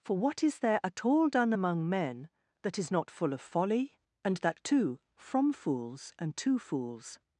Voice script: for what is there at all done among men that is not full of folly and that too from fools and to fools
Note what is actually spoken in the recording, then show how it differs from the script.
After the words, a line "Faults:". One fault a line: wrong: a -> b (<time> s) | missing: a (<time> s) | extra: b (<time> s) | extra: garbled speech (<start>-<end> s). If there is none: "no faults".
for what is there at all done among men that is not full of folly and that too from fools and to fools
Faults:
no faults